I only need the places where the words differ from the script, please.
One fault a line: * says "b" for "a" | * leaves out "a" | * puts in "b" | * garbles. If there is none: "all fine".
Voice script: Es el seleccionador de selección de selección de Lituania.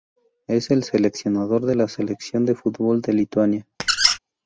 * puts in "la"
* says "fútbol" for "selección"